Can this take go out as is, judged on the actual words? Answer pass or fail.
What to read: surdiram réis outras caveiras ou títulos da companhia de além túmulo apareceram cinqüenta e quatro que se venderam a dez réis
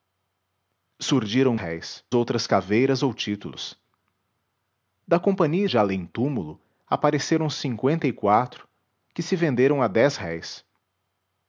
pass